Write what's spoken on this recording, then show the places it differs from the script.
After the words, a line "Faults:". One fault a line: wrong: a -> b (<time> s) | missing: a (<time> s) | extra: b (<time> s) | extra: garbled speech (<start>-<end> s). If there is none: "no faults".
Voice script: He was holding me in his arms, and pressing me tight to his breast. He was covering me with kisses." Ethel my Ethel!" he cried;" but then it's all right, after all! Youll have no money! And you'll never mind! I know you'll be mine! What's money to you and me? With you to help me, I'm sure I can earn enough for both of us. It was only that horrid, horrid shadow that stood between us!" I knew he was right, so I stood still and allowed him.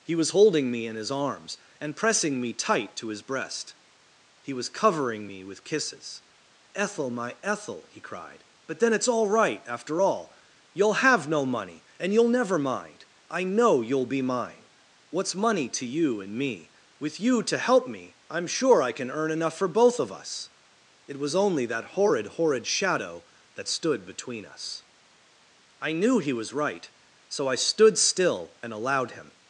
He was holding me in his arms, and pressing me tight to his breast. He was covering me with kisses." Ethel my Ethel!" he cried;" but then it's all right, after all! Youll have no money! And you'll never mind! I know you'll be mine! What's money to you and me? With you to help me, I'm sure I can earn enough for both of us. It was only that horrid, horrid shadow that stood between us!" I knew he was right, so I stood still and allowed him.
Faults:
no faults